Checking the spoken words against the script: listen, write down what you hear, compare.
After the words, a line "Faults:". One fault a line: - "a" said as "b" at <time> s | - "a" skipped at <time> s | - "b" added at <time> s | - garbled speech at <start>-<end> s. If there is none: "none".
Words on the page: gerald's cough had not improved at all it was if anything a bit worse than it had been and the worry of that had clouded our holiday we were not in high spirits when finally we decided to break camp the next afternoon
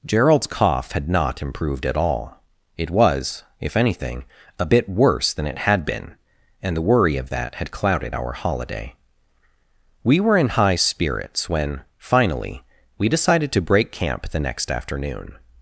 gerald's cough had not improved at all it was if anything a bit worse than it had been and the worry of that had clouded our holiday we were in high spirits when finally we decided to break camp the next afternoon
Faults:
- "not" skipped at 10.4 s